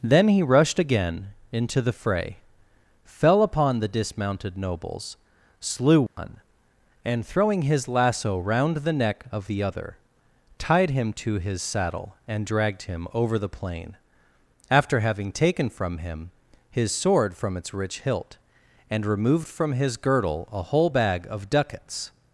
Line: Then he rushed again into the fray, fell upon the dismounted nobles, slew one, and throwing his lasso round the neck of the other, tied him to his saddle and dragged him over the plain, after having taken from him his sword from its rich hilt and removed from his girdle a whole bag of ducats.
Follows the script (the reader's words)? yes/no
yes